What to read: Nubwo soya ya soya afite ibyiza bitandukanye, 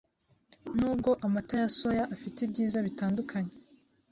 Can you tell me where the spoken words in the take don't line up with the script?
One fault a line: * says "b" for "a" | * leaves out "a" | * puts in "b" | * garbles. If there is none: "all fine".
* says "amata" for "soya"